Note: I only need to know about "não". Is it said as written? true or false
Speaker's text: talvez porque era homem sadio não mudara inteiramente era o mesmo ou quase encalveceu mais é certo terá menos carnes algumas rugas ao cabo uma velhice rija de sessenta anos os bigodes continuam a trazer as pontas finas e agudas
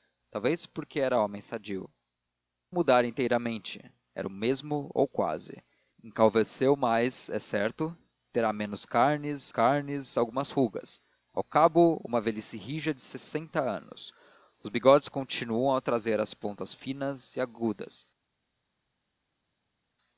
false